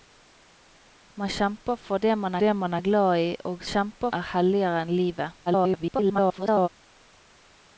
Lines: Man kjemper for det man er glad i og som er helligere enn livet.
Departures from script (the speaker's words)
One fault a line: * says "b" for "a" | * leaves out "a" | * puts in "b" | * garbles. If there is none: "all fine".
* puts in "det man"
* says "kjemper" for "som"
* garbles